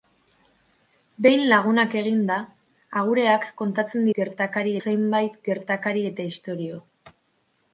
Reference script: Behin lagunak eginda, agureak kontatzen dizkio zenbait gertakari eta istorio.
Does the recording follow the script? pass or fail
fail